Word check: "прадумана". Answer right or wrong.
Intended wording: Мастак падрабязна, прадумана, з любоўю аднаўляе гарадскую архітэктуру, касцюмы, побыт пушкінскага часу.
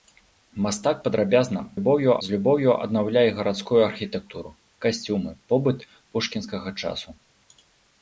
wrong